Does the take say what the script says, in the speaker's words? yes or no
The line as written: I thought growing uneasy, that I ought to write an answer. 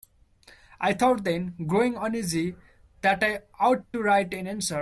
no